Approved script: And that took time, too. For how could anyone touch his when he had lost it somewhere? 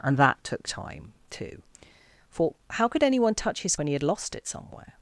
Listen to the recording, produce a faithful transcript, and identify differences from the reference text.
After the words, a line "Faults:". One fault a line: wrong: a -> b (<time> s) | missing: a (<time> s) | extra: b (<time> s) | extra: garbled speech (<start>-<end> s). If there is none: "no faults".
And that took time, too. For how could anyone touch his when he had lost it somewhere?
Faults:
no faults